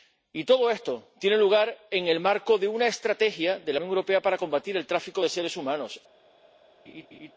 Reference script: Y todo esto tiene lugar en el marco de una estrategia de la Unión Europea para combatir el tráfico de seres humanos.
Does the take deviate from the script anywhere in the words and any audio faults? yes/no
yes